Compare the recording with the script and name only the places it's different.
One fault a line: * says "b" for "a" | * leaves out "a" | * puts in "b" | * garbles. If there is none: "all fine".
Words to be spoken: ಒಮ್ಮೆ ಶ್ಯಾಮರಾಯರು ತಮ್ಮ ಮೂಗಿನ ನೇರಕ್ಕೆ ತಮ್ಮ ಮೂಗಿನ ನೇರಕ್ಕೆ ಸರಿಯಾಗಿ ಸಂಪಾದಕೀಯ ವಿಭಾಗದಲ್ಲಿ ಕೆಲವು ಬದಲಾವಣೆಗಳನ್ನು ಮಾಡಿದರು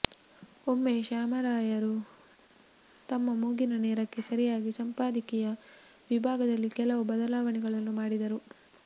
* leaves out "ತಮ್ಮ ಮೂಗಿನ ನೇರಕ್ಕೆ"